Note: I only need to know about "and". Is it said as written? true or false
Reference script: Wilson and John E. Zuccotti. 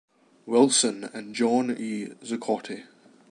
true